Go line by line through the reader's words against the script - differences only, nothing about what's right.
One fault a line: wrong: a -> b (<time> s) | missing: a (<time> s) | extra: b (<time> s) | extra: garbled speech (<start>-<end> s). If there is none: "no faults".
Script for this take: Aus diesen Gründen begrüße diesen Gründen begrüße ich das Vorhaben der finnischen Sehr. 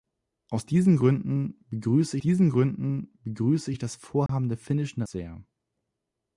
no faults